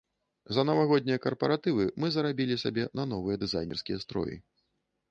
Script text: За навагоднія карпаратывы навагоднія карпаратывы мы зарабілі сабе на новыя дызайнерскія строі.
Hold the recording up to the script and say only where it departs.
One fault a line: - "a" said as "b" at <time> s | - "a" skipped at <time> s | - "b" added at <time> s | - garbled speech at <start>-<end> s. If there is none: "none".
- "навагоднія карпаратывы" skipped at 1.9 s